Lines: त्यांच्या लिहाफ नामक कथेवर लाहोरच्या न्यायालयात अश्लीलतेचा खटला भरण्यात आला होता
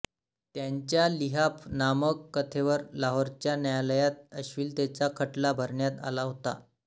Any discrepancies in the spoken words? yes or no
no